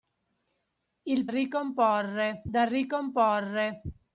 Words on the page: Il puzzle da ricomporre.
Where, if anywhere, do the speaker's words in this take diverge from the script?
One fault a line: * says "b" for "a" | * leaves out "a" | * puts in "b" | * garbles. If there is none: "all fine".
* says "ricomporre" for "puzzle"